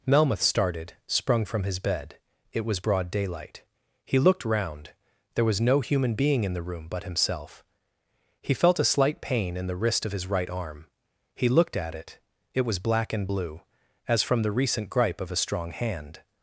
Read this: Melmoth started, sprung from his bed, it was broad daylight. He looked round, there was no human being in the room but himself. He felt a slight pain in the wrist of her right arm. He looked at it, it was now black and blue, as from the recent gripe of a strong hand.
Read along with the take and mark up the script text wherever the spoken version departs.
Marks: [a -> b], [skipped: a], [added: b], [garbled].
Melmoth started, sprung from his bed, it was broad daylight. He looked round, there was no human being in the room but himself. He felt a slight pain in the wrist of [her -> his] right arm. He looked at it, it was [skipped: now] black and blue, as from the recent gripe of a strong hand.